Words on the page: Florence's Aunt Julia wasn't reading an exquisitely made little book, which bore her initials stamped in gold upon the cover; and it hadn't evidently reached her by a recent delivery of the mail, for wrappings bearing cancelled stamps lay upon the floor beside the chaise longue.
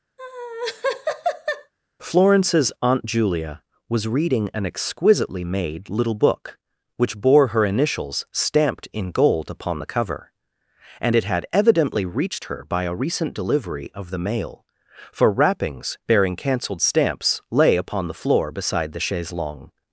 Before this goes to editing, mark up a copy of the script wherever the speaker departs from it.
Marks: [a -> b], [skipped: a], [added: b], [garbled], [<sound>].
[laugh] Florence's Aunt Julia [wasn't -> was] reading an exquisitely made little book, which bore her initials stamped in gold upon the cover; and it [hadn't -> had] evidently reached her by a recent delivery of the mail, for wrappings bearing cancelled stamps lay upon the floor beside the chaise longue.